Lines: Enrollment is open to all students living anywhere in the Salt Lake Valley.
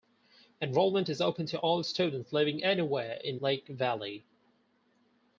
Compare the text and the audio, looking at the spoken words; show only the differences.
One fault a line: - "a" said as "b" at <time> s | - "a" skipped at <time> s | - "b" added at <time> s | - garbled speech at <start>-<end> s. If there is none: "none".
- "the Salt" skipped at 3.4 s